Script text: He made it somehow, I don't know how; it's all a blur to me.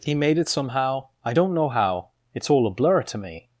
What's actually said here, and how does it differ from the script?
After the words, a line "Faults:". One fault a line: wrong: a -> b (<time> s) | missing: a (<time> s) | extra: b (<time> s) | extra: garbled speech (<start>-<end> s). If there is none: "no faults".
He made it somehow, I don't know how; it's all a blur to me.
Faults:
no faults